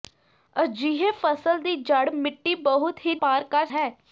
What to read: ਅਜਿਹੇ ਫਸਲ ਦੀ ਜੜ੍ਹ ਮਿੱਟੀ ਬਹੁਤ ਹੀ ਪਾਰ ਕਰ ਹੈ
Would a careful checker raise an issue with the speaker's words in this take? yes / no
no